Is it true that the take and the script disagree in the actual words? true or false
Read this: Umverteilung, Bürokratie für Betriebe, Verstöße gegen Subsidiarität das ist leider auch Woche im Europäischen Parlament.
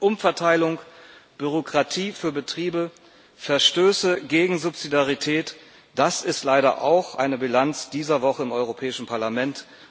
true